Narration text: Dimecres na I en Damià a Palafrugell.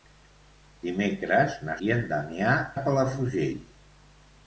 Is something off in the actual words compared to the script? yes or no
no